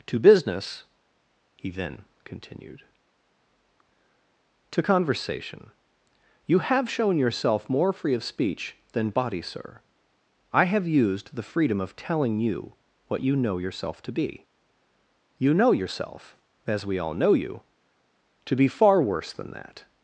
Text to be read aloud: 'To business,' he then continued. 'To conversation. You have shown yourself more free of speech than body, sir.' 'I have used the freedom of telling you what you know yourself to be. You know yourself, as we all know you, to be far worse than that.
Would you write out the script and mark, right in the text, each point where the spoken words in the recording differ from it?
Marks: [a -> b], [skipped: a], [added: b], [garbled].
'To business,' he then continued. 'To conversation. You have shown yourself more free of speech than body, sir.' 'I have used the freedom of telling you what you know yourself to be. You know yourself, as we all know you, to be far worse than that.